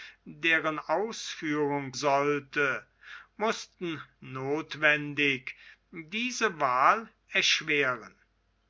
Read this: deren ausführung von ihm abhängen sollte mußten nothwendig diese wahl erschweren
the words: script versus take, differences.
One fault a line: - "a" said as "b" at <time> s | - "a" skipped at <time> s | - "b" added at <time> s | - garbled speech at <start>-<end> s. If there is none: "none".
- "von ihm abhängen" skipped at 1.9 s